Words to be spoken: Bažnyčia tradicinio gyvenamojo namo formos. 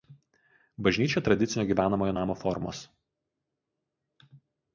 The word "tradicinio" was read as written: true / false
true